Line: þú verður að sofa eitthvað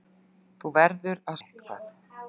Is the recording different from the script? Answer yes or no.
yes